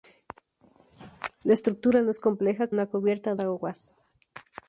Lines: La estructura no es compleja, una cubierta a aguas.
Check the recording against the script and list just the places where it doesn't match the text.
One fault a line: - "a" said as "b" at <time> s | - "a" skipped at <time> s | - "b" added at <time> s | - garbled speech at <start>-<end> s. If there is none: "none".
none